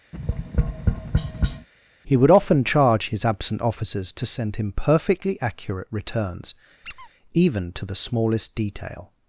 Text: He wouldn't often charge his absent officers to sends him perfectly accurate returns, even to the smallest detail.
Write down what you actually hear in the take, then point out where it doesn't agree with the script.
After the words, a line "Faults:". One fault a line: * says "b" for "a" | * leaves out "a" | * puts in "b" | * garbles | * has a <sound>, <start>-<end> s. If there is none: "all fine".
He would often charge his absent officers to send him perfectly accurate returns, even to the smallest detail.
Faults:
* has a tap, 0.1-1.7 s
* says "would" for "wouldn't"
* says "send" for "sends"
* has a squeak, 6.8-7.1 s